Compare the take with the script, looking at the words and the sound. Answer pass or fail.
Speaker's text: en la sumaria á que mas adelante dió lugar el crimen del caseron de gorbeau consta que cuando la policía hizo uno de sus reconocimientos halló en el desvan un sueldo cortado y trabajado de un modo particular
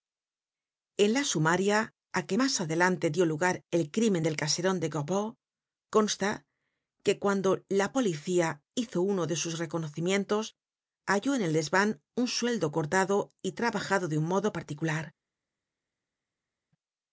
pass